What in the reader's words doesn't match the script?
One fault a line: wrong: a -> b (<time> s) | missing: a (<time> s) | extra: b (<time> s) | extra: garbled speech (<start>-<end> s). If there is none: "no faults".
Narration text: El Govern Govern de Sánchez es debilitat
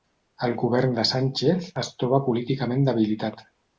missing: Govern (0.9 s)
extra: troba políticament (2.0 s)